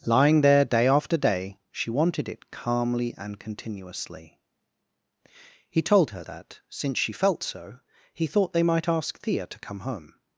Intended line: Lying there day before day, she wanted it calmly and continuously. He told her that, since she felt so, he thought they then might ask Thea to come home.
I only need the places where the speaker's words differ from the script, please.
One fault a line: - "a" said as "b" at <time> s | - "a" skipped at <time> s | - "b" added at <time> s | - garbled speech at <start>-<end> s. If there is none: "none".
- "before" said as "after" at 0.9 s
- "then" skipped at 8.6 s